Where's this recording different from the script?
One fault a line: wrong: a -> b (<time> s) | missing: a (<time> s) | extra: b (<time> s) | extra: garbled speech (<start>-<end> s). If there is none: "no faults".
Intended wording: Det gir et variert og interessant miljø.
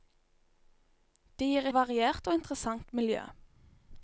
missing: et (1.7 s)